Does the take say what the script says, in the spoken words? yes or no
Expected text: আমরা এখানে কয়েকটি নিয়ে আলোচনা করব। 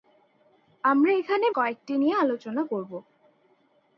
yes